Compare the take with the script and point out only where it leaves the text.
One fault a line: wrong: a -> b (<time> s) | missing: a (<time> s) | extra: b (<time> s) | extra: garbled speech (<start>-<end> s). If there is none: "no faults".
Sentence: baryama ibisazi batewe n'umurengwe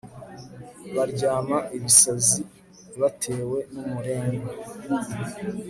no faults